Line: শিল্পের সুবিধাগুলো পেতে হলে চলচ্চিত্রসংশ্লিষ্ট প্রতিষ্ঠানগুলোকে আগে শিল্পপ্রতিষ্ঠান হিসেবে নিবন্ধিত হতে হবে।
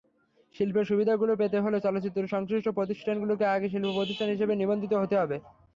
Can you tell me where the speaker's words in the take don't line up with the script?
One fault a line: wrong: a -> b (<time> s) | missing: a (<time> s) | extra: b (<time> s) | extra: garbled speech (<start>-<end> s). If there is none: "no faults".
no faults